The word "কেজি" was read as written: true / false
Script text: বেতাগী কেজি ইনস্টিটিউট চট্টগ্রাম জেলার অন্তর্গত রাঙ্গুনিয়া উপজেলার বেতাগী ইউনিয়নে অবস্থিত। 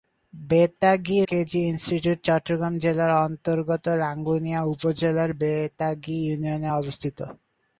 true